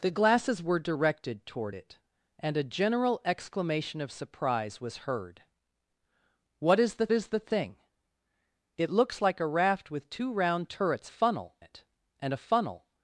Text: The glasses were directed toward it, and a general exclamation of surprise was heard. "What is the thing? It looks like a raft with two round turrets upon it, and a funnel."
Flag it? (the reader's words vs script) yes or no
yes